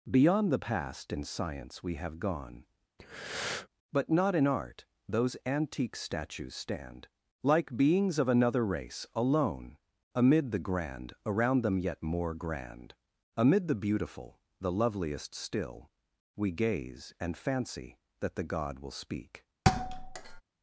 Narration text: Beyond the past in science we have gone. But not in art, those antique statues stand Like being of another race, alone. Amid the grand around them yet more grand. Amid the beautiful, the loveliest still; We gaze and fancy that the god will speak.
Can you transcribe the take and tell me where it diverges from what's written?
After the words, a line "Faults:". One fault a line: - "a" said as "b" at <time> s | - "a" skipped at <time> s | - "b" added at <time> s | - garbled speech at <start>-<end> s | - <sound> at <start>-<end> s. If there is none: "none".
Beyond the past in science we have gone. But not in art, those antique statues stand Like beings of another race, alone. Amid the grand around them yet more grand. Amid the beautiful, the loveliest still; We gaze and fancy that the god will speak.
Faults:
- breath at 3.0-3.7 s
- "being" said as "beings" at 7.8 s
- thud at 19.7-20.4 s